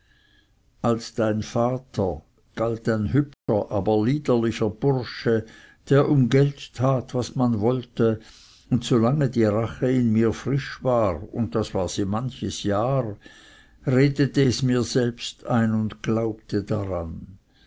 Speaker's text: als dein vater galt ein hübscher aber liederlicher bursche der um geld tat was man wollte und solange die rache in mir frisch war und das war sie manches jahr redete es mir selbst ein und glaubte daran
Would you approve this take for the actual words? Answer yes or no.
yes